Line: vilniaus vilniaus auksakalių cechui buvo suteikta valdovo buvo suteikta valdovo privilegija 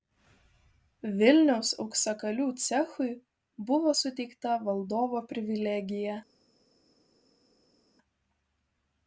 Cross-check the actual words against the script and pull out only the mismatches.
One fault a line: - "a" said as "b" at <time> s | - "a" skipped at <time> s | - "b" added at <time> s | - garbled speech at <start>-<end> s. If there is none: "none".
- "vilniaus" skipped at 1.7 s
- "buvo suteikta valdovo" skipped at 5.2 s